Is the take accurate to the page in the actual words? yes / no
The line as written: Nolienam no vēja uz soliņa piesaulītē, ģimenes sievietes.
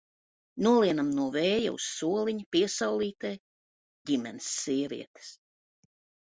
yes